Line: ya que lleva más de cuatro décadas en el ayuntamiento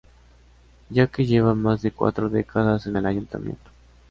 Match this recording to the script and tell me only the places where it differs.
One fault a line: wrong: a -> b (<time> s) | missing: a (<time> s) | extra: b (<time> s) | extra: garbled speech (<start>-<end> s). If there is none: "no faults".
no faults